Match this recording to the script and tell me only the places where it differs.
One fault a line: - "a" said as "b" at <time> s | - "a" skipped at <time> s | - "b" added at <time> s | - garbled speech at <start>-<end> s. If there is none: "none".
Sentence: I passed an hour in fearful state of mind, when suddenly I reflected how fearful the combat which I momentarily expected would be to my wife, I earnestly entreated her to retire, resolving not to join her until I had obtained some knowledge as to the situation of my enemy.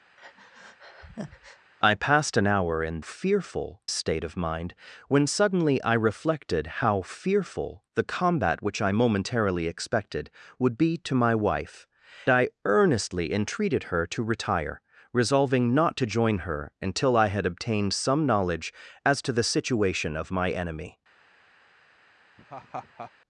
none